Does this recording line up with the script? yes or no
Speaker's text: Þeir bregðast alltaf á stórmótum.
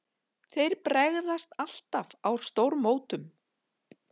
yes